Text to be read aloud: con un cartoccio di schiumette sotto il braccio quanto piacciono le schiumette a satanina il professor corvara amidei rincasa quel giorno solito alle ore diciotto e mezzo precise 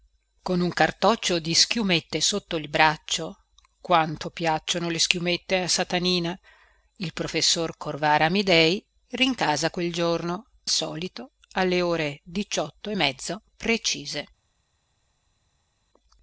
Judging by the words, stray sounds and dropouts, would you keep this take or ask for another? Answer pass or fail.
pass